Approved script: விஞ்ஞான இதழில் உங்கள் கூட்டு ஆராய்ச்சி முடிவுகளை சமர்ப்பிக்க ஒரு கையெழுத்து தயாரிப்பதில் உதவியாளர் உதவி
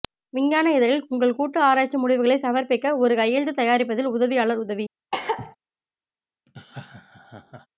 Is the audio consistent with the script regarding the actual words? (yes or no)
yes